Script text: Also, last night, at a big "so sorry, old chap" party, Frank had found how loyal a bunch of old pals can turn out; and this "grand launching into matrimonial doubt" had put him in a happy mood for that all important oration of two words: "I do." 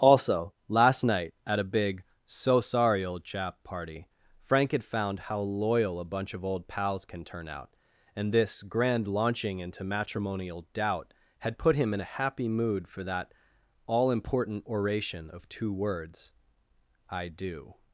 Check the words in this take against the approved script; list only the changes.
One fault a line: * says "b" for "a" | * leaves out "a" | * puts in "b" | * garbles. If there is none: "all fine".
all fine